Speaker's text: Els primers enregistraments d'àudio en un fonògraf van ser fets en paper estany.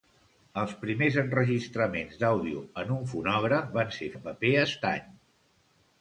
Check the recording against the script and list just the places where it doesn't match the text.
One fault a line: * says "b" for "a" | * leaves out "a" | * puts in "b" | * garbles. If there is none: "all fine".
* leaves out "fets"